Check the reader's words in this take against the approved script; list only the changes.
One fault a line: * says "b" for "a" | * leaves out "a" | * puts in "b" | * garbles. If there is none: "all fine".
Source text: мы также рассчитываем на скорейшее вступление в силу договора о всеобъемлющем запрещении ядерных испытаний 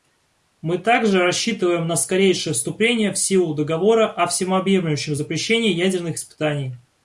all fine